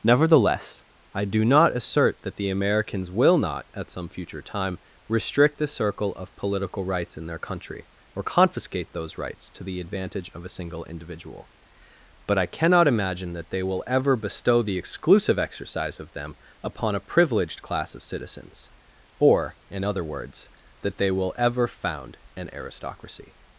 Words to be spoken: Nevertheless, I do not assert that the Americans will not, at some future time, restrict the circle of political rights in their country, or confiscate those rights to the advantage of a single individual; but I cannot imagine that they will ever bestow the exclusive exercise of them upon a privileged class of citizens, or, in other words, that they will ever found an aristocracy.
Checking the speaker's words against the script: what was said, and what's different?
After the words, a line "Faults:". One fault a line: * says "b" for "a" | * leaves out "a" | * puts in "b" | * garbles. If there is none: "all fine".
Nevertheless, I do not assert that the Americans will not, at some future time, restrict the circle of political rights in their country, or confiscate those rights to the advantage of a single individual; but I cannot imagine that they will ever bestow the exclusive exercise of them upon a privileged class of citizens, or, in other words, that they will ever found an aristocracy.
Faults:
all fine